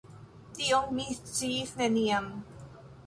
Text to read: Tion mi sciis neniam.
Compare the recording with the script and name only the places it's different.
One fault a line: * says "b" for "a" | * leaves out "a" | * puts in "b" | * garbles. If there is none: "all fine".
all fine